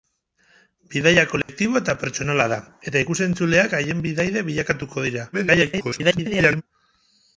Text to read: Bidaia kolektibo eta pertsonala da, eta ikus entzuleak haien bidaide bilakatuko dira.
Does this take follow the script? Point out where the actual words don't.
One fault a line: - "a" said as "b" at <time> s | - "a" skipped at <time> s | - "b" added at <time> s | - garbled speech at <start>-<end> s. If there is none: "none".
- garbled speech at 5.3-6.6 s